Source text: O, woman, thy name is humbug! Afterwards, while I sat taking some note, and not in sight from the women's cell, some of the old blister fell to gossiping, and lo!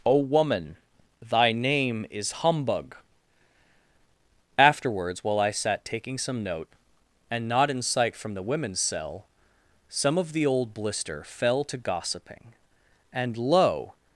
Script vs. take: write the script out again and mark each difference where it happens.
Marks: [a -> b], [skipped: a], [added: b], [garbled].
O, woman, thy name is humbug! Afterwards, while I sat taking some note, and not in sight from the women's cell, some of the old blister fell to gossiping, and lo!